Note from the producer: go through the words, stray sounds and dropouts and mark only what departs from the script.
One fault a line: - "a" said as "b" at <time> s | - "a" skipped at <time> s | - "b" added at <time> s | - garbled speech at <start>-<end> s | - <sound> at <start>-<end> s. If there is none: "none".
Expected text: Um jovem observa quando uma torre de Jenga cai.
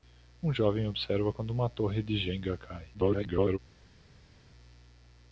- garbled speech at 2.9-3.6 s